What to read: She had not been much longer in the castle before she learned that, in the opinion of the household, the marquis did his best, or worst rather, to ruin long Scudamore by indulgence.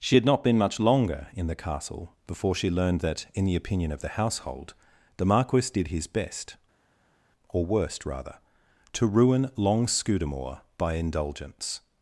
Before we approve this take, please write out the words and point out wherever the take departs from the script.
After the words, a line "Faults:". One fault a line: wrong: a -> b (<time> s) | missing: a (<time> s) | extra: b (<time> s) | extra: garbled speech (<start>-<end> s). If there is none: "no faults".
She had not been much longer in the castle before she learned that, in the opinion of the household, the marquis did his best, or worst rather, to ruin long Scudamore by indulgence.
Faults:
no faults